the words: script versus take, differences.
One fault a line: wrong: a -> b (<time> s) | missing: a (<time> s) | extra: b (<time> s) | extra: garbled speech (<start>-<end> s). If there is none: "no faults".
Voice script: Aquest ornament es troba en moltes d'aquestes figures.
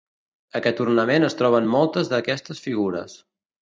no faults